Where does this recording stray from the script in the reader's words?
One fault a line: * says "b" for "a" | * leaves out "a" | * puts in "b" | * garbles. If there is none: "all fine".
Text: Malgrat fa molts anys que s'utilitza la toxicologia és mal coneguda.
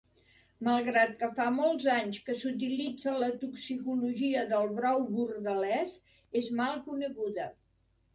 * puts in "que"
* puts in "del brou bordelès"